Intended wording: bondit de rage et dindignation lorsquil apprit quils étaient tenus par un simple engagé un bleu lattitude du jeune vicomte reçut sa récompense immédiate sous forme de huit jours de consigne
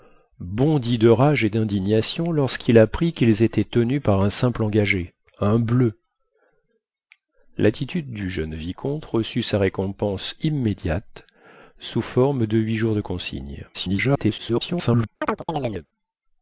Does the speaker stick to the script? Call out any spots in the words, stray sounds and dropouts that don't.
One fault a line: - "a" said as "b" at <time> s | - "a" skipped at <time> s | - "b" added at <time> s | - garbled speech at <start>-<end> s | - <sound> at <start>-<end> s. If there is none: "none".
- garbled speech at 13.7-15.1 s
- chirp at 15.2-15.9 s